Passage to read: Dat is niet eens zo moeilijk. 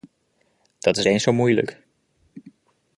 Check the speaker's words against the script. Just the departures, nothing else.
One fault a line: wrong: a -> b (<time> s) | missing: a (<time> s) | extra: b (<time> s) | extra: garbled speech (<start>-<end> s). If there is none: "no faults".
missing: niet (1.1 s)